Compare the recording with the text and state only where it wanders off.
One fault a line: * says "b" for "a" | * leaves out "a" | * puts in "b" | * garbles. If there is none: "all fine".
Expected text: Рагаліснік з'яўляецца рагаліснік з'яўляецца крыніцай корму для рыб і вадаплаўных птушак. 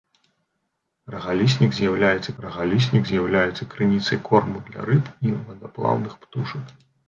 all fine